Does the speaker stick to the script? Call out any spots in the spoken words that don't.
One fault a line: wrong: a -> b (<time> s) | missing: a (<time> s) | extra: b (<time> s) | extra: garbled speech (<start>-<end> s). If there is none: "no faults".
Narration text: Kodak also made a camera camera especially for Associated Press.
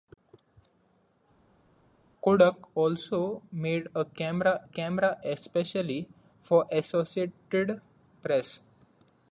no faults